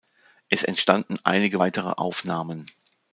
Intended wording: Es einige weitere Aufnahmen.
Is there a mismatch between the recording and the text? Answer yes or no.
yes